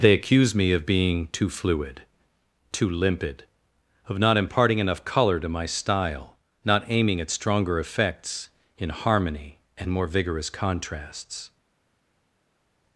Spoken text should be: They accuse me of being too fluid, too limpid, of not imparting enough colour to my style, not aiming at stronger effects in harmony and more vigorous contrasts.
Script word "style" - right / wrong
right